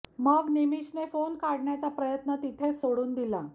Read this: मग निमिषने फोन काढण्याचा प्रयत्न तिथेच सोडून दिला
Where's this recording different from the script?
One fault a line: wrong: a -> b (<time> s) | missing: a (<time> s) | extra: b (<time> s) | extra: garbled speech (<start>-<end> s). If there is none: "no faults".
no faults